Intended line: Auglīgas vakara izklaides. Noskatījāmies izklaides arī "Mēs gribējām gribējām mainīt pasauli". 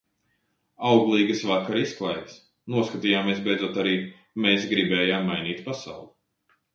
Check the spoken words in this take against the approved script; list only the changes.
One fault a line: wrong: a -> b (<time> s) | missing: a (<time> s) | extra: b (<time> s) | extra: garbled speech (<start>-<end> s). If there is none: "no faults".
wrong: izklaides -> beidzot (3.5 s)
missing: gribējām (5.3 s)